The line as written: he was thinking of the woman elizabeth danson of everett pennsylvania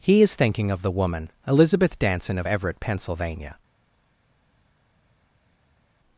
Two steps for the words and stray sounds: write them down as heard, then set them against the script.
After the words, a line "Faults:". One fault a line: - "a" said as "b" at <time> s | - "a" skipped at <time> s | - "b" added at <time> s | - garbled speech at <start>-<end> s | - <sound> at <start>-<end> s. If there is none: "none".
he is thinking of the woman elizabeth danson of everett pennsylvania
Faults:
- "was" said as "is" at 0.2 s